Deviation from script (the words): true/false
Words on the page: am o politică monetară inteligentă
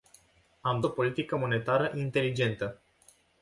false